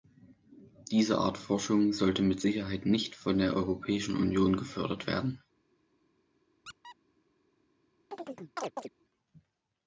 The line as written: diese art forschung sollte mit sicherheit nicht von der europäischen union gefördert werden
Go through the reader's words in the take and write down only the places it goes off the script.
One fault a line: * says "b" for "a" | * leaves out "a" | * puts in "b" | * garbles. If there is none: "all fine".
all fine